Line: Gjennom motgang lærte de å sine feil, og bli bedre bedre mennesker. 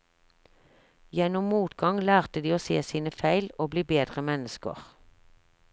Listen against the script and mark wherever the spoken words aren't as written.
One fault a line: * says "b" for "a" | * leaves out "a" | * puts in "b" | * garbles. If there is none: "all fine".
* puts in "se"
* leaves out "bedre"